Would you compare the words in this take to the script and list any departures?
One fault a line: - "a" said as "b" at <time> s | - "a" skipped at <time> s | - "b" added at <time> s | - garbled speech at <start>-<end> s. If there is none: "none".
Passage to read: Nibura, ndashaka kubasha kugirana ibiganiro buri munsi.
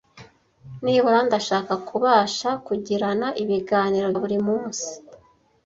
none